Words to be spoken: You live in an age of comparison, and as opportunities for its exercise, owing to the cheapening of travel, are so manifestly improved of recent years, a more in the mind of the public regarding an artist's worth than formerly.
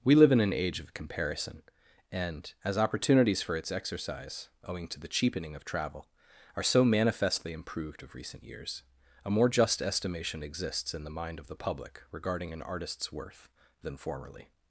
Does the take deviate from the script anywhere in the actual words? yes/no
yes